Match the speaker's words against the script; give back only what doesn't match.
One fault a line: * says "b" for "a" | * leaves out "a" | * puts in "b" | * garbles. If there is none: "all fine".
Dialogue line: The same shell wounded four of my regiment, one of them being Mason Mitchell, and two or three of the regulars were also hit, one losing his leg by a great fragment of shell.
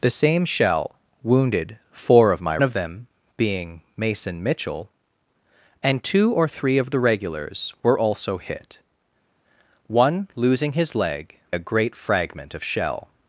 * leaves out "regiment one"
* leaves out "by"